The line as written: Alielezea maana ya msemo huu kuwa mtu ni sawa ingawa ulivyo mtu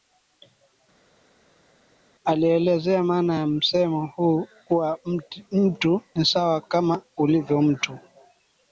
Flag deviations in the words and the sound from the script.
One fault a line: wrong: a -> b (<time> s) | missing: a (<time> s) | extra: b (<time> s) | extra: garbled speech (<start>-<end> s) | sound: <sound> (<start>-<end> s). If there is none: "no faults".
wrong: ingawa -> kama (6.6 s)